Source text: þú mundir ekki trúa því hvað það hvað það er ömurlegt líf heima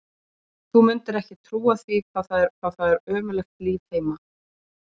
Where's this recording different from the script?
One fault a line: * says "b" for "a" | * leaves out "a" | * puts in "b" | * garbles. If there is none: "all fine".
all fine